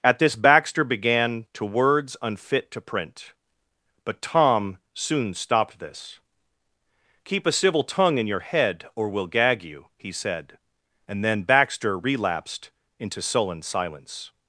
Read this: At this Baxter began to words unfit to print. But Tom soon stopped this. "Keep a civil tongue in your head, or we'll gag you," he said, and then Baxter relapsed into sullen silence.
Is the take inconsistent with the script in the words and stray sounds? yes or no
no